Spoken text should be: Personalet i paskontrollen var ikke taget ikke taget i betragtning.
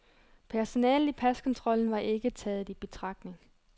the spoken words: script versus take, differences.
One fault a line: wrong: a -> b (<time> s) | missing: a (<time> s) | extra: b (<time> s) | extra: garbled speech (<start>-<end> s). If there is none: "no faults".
missing: ikke taget (2.7 s)